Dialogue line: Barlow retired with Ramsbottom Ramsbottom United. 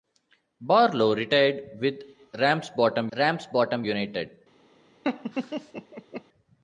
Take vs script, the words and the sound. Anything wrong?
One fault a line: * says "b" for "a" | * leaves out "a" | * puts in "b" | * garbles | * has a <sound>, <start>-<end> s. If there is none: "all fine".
* has a laugh, 5.0-6.2 s